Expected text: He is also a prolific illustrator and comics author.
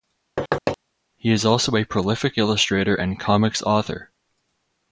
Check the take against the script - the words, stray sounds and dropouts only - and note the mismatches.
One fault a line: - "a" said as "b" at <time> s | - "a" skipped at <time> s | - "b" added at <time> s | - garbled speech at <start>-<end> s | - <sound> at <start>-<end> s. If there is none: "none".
- thud at 0.4-0.8 s